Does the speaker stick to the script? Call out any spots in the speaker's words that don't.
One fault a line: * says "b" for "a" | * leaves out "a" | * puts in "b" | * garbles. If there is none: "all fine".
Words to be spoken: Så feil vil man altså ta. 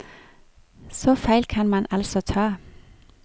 * says "kan" for "vil"